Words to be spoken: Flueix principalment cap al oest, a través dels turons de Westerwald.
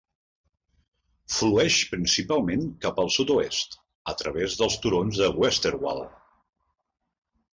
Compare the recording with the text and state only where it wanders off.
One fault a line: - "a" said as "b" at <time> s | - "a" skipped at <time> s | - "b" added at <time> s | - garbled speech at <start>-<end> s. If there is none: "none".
- "sud" added at 3.2 s